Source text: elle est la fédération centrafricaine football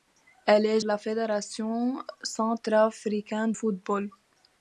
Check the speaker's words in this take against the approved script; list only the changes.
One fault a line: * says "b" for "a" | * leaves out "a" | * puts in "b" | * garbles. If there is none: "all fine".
all fine